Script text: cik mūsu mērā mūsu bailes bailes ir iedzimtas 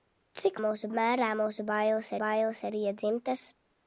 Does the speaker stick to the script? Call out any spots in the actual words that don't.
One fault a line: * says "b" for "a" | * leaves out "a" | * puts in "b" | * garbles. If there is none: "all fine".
all fine